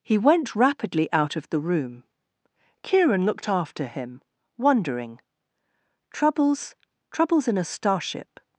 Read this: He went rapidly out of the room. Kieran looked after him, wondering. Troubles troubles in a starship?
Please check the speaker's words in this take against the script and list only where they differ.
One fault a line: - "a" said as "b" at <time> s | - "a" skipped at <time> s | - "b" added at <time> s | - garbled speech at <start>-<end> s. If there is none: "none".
none